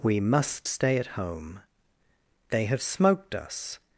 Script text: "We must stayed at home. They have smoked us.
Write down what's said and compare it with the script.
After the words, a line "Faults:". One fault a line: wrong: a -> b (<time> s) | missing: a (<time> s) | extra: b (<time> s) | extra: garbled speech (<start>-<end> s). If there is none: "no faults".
"We must stay at home. They have smoked us.
Faults:
wrong: stayed -> stay (0.7 s)